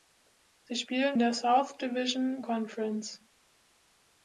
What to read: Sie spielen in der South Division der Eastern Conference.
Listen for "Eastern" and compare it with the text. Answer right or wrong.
wrong